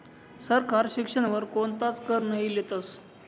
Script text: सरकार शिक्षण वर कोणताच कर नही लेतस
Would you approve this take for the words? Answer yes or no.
yes